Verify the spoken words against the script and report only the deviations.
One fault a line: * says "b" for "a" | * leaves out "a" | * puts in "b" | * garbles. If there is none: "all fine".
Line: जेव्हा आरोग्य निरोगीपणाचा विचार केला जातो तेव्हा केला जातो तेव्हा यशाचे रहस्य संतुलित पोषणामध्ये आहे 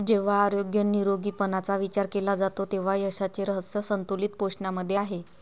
* leaves out "केला जातो तेव्हा"